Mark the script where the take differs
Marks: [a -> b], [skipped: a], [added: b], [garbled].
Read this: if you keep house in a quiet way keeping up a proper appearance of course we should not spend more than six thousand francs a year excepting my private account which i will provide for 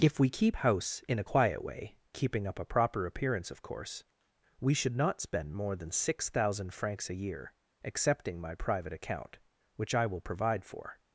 if [you -> we] keep house in a quiet way keeping up a proper appearance of course we should not spend more than six thousand francs a year excepting my private account which i will provide for